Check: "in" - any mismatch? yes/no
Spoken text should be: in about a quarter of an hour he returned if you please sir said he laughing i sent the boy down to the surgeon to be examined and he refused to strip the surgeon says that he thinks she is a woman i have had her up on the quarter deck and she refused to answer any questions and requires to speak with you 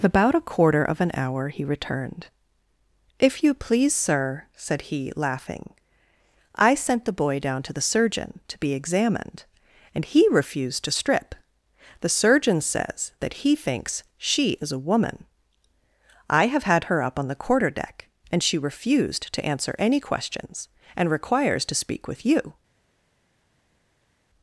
yes